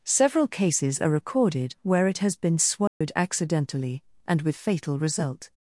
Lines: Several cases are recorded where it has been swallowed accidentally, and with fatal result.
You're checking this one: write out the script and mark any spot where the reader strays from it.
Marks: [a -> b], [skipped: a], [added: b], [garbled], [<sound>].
Several cases are recorded where it has been swallowed [dropout] accidentally, and with fatal result.